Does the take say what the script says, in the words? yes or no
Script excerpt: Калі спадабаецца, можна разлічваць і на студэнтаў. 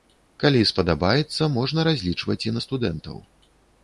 yes